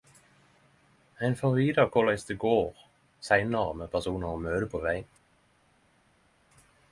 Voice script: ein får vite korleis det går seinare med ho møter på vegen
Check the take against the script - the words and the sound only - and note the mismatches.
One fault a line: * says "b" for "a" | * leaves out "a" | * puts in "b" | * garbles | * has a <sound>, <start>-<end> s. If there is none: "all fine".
* puts in "personar"